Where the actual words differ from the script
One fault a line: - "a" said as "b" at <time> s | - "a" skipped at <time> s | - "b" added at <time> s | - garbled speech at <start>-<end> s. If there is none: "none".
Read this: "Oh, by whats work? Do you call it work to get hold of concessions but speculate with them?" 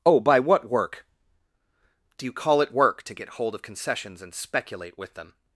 - "whats" said as "what" at 0.4 s
- "but" said as "and" at 4.2 s